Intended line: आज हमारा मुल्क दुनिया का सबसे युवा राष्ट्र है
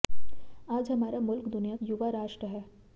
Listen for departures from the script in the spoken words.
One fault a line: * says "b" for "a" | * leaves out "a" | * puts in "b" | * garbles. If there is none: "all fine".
* leaves out "का सबसे"